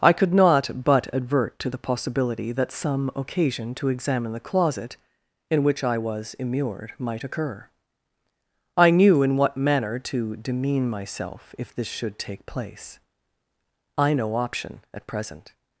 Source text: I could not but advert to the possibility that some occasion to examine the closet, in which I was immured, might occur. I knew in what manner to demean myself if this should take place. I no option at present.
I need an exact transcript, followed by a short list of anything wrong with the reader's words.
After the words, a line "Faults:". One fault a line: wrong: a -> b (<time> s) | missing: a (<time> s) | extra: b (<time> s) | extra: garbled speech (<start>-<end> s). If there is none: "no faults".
I could not but advert to the possibility that some occasion to examine the closet, in which I was immured, might occur. I knew in what manner to demean myself if this should take place. I no option at present.
Faults:
no faults